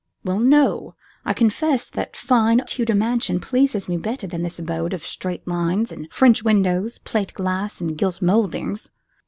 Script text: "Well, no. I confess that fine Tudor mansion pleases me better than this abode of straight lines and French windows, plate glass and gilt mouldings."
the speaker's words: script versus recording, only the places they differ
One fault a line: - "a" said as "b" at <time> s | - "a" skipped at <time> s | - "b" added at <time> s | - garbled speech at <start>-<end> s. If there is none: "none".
none